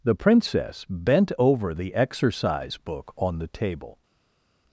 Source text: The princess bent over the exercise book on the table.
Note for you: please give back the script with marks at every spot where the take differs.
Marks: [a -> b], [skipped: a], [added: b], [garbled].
The princess bent over the exercise book on the table.